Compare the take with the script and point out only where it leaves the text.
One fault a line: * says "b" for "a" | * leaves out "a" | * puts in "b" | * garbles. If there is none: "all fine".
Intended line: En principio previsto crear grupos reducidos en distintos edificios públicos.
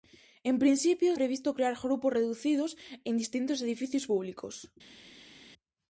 all fine